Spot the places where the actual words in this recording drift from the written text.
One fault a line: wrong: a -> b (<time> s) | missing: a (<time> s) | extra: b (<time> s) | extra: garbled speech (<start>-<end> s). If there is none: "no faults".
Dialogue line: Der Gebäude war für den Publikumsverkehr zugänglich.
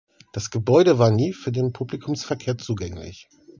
wrong: Der -> Das (0.3 s)
extra: nie (1.1 s)